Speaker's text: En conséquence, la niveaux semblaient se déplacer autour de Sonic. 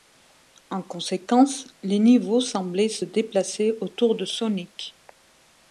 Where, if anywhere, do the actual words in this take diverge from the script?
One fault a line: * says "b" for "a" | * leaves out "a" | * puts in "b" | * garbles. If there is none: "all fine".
* says "les" for "la"